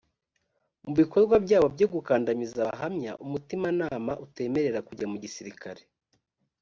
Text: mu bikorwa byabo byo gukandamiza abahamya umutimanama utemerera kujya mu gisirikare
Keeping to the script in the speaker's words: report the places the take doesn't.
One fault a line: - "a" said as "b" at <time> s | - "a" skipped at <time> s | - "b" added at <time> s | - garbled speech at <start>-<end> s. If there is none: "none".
none